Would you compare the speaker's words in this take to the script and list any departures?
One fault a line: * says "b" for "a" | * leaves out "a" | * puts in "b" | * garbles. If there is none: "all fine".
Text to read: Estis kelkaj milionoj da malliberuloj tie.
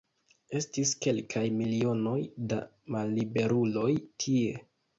all fine